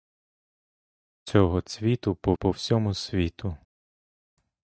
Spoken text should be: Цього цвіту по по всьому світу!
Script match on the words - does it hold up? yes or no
yes